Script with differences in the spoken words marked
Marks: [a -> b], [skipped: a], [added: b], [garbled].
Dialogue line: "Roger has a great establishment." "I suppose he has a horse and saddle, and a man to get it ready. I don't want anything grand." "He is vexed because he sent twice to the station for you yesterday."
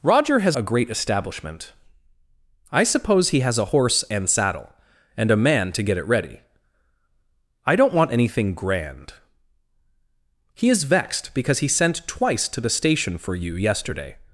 "Roger has a great establishment." "I suppose he has a horse and saddle, and a man to get it ready. I don't want anything grand." "He is vexed because he sent twice to the station for you yesterday."